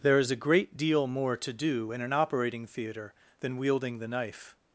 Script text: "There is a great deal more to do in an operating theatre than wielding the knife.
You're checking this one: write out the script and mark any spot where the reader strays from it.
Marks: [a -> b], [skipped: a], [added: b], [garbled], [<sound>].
"There is a great deal more to do in an operating theatre than wielding the knife.